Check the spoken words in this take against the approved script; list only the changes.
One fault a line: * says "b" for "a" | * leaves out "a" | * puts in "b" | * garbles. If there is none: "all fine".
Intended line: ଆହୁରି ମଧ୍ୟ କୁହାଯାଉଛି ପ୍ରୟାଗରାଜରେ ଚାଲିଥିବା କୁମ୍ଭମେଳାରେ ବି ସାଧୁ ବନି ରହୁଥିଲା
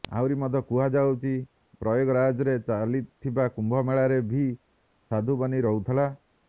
all fine